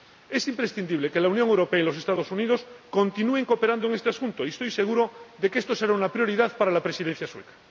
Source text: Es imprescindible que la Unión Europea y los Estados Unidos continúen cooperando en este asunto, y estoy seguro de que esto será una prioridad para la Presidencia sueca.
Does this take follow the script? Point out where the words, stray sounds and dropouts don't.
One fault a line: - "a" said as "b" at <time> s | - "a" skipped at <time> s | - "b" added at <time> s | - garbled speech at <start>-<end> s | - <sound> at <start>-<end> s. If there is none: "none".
none